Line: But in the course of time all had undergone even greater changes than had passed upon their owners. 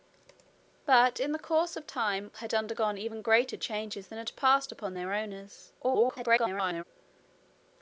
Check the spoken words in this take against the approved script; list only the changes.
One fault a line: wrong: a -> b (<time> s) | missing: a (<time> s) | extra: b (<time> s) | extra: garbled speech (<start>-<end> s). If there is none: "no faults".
missing: all (2.3 s)
extra: garbled speech (5.8-6.8 s)